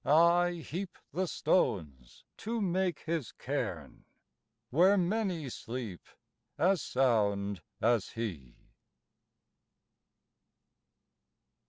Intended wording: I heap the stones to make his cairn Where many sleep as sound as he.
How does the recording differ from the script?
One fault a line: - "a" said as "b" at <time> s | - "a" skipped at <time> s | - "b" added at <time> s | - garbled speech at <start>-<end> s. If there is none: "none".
none